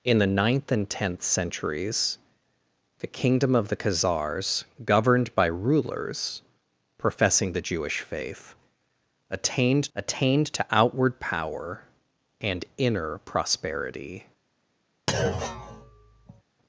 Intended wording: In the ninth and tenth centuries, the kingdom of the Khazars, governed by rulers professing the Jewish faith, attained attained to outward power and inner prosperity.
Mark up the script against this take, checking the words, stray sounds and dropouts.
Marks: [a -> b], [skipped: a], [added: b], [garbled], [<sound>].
In the ninth and tenth centuries, the kingdom of the Khazars, governed by rulers professing the Jewish faith, attained attained to outward power and inner prosperity. [thud]